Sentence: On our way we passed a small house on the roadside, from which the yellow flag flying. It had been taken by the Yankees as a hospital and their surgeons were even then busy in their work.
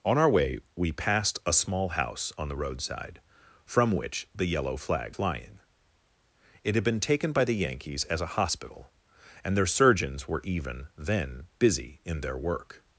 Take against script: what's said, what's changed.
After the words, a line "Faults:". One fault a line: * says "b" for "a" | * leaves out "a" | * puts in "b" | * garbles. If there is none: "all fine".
On our way we passed a small house on the roadside, from which the yellow flag flying. It had been taken by the Yankees as a hospital and their surgeons were even then busy in their work.
Faults:
all fine